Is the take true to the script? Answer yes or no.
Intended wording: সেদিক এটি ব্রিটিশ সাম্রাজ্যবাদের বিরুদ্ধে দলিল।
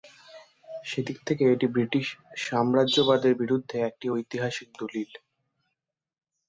no